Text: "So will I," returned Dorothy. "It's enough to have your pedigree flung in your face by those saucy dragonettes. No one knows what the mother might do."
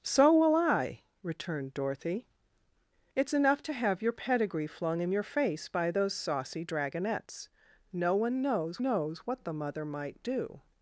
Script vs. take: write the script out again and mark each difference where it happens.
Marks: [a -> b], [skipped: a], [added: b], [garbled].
"So will I," returned Dorothy. "It's enough to have your pedigree flung in your face by those saucy dragonettes. No one knows [added: knows] what the mother might do."